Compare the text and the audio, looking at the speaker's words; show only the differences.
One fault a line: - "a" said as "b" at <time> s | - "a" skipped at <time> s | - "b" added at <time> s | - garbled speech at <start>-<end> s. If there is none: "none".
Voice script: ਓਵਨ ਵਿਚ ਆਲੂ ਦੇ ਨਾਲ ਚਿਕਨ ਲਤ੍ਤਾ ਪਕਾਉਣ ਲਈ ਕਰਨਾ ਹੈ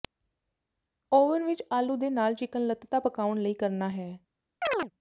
none